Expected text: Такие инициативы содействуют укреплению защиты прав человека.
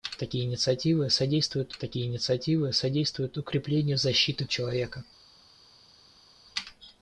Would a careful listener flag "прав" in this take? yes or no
yes